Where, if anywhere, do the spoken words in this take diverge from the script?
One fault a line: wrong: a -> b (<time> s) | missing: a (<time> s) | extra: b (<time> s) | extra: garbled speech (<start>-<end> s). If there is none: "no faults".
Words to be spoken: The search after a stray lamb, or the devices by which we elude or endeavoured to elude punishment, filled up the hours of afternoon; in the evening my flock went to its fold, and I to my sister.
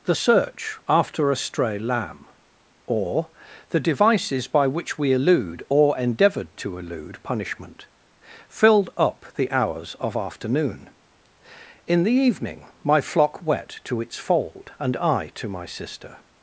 wrong: went -> wet (13.4 s)